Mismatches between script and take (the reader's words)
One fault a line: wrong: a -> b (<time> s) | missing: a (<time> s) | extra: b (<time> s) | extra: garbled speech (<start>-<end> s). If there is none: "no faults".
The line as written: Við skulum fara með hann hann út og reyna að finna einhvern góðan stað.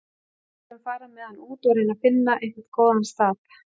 missing: hann (1.4 s)